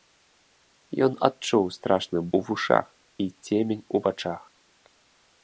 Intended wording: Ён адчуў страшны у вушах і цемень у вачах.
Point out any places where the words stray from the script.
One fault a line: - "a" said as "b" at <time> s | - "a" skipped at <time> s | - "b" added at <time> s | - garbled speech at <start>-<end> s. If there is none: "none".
none